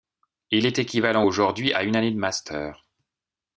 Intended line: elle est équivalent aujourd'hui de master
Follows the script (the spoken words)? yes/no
no